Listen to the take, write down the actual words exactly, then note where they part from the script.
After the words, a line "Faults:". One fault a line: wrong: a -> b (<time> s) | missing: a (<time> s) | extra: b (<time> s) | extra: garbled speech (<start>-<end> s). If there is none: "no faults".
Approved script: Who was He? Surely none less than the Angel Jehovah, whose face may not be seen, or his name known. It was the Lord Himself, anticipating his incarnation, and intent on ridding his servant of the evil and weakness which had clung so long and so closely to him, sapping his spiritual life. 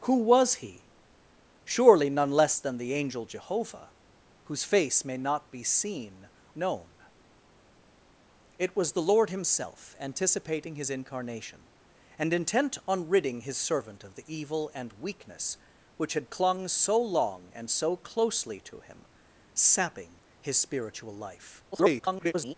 Who was He? Surely none less than the Angel Jehovah, whose face may not be seen, known. It was the Lord Himself, anticipating his incarnation, and intent on ridding his servant of the evil and weakness which had clung so long and so closely to him, sapping his spiritual life. [garbled]
Faults:
missing: or his name (6.3 s)
extra: garbled speech (21.7-22.5 s)